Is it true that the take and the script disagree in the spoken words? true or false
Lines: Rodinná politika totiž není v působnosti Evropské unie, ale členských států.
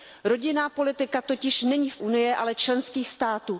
true